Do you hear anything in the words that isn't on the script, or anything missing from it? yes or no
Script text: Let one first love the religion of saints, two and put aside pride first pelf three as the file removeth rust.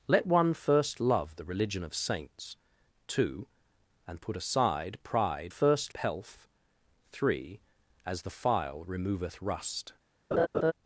no